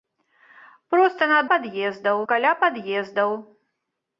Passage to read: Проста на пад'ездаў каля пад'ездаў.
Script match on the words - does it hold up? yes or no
yes